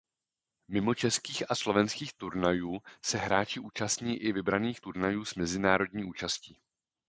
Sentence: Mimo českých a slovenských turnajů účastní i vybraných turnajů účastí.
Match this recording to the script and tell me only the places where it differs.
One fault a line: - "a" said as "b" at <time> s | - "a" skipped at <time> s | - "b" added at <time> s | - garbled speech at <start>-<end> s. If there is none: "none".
- "se hráči" added at 3.0 s
- "s mezinárodní" added at 5.2 s